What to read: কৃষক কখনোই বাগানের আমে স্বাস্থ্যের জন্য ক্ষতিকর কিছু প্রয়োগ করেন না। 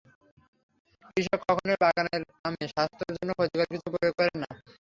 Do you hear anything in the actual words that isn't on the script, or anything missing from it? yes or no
no